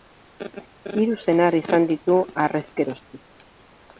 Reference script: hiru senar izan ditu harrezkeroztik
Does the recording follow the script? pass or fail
pass